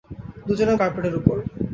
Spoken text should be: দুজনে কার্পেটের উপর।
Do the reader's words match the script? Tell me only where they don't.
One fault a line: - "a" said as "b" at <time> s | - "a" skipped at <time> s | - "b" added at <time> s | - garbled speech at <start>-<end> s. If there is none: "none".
none